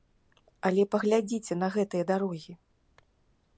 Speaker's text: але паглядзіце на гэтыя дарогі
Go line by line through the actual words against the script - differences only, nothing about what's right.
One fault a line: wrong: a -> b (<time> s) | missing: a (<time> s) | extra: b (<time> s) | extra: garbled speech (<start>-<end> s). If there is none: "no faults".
no faults